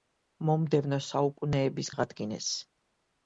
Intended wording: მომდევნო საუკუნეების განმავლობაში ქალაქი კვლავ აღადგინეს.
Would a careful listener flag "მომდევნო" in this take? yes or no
no